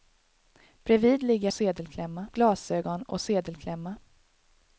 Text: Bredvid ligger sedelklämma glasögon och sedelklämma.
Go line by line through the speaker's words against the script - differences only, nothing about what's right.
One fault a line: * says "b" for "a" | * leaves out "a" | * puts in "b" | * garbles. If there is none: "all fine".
all fine